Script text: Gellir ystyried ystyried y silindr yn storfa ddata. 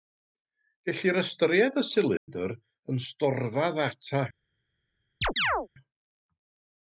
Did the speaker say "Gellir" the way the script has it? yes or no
yes